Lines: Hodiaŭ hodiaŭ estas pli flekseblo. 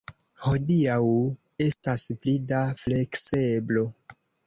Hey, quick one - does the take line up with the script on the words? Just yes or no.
no